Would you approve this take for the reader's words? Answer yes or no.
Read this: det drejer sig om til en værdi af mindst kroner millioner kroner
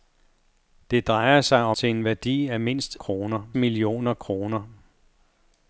yes